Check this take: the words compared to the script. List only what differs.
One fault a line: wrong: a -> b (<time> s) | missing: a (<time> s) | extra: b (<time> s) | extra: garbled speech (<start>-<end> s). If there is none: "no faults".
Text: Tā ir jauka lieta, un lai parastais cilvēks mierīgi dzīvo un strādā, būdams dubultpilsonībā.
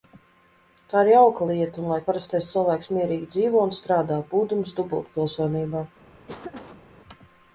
no faults